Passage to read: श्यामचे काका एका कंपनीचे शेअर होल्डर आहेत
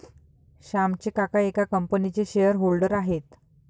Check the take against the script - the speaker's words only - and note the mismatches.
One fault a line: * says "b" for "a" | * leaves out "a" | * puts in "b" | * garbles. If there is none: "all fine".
all fine